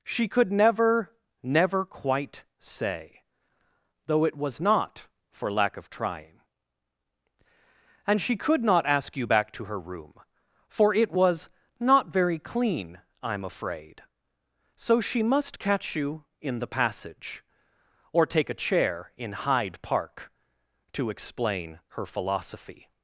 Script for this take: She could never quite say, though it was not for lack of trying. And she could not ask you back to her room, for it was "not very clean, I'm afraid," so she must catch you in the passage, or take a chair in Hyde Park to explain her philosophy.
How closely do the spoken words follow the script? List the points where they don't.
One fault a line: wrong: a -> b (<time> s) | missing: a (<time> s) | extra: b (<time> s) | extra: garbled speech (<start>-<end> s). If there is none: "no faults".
extra: never (1.4 s)